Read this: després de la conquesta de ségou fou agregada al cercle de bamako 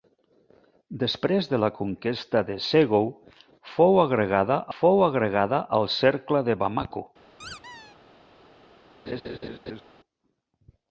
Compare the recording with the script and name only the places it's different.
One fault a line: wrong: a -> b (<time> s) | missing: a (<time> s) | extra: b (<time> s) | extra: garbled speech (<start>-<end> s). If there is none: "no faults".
extra: fou agregada (4.8 s)